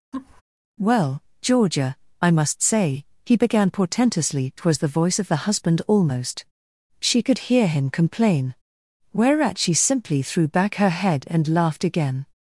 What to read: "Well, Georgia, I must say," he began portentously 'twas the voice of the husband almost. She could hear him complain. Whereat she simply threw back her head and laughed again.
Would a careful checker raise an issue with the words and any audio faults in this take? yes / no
yes